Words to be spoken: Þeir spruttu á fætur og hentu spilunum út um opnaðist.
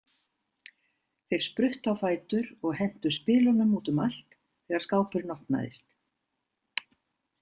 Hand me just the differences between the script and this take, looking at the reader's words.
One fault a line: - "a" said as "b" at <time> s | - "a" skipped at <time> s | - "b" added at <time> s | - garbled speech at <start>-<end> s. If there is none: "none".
- "allt þegar skápurinn" added at 4.1 s